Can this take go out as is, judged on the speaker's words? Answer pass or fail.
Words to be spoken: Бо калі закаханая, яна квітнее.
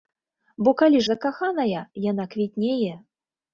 pass